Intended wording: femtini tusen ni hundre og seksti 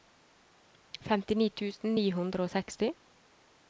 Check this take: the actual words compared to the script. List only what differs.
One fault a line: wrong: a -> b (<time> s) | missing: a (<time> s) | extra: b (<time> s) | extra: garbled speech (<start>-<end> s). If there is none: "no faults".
no faults